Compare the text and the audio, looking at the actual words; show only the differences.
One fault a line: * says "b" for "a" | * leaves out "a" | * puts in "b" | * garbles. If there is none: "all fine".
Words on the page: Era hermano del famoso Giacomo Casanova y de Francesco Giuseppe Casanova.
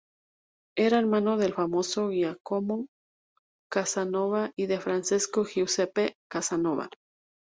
all fine